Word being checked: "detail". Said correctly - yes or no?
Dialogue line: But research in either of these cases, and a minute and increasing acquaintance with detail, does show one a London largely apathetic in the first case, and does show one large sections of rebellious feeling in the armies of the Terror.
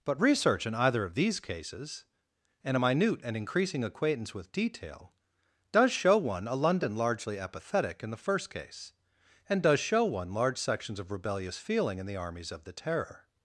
yes